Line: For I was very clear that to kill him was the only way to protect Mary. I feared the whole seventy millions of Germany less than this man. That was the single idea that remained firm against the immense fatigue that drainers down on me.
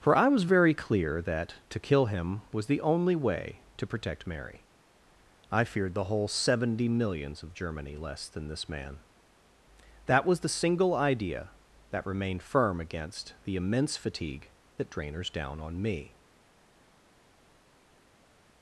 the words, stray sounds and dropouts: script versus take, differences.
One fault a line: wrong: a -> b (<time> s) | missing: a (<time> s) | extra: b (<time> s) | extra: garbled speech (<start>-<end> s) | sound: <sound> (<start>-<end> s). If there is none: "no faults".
no faults